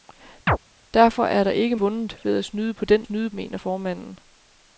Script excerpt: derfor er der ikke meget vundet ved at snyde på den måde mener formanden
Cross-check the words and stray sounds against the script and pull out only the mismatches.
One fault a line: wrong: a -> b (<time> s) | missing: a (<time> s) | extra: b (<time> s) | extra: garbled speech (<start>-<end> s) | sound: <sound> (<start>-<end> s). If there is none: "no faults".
sound: chirp (0.5-0.6 s)
missing: meget (1.8 s)
wrong: måde -> snyde (3.0 s)